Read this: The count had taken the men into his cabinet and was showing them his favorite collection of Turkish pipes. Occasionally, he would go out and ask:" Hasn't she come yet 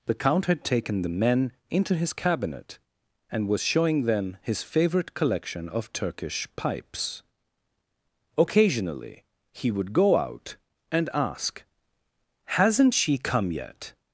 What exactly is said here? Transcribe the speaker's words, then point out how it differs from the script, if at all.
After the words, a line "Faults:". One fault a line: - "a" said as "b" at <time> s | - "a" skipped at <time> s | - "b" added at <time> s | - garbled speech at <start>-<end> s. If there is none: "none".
The count had taken the men into his cabinet and was showing them his favorite collection of Turkish pipes. Occasionally, he would go out and ask:" Hasn't she come yet
Faults:
none